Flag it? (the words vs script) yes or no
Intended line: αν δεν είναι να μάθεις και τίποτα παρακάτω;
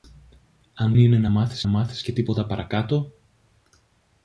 yes